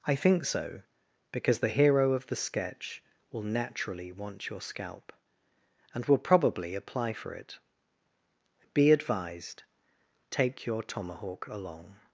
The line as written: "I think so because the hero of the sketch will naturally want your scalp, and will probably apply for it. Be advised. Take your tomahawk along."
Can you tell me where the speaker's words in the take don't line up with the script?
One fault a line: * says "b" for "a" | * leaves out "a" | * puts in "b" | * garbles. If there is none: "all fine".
all fine